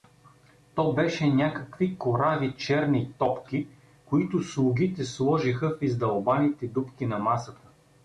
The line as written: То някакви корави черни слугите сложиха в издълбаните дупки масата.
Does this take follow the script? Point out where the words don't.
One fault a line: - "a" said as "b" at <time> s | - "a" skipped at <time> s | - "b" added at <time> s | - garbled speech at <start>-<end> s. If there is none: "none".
- "беше" added at 0.9 s
- "топки които" added at 3.2 s
- "на" added at 7.0 s